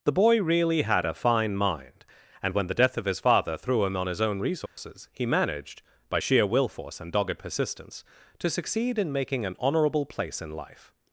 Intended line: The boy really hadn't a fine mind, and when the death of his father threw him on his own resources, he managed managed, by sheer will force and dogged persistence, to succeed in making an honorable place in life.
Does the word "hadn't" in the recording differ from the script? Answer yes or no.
yes